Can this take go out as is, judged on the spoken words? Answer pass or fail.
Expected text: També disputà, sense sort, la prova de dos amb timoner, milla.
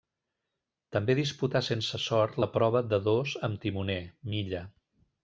pass